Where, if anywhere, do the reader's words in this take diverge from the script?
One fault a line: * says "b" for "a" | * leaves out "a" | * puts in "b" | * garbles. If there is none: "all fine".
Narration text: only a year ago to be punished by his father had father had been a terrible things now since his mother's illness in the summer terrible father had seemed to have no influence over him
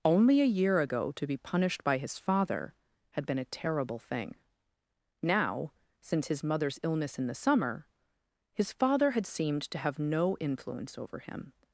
* leaves out "father had"
* says "thing" for "things"
* says "his" for "terrible"